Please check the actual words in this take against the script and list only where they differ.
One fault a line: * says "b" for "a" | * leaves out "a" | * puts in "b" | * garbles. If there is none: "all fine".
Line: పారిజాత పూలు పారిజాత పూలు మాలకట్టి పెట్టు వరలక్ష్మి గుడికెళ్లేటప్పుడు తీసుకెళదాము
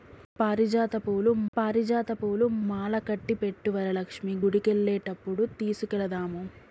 all fine